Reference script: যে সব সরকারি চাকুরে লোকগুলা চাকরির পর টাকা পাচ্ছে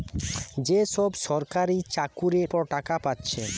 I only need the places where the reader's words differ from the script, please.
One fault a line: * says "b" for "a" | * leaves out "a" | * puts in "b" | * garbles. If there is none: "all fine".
* leaves out "লোকগুলা চাকরির"